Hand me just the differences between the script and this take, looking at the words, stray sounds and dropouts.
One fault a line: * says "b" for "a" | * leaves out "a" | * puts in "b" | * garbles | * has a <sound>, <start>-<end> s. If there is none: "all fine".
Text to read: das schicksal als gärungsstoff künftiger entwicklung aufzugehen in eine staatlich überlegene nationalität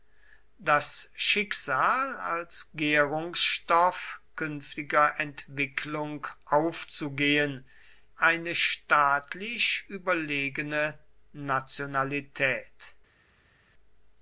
* leaves out "in"